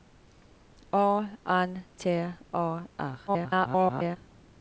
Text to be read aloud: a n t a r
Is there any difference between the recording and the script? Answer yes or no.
yes